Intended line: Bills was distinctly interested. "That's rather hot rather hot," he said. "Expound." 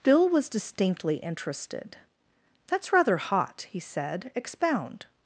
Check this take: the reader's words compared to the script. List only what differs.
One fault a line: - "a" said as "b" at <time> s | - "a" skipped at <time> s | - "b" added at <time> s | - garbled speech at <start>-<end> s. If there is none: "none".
- "Bills" said as "Bill" at 0.0 s
- "rather hot" skipped at 3.7 s